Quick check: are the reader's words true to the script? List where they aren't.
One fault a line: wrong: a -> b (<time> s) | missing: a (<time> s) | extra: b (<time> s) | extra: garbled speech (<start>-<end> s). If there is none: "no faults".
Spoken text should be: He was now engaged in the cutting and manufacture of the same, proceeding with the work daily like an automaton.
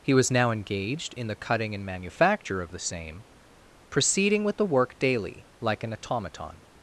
no faults